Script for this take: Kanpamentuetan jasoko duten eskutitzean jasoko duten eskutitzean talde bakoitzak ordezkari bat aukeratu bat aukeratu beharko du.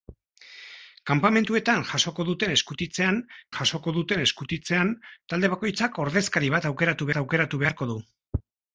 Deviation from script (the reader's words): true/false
false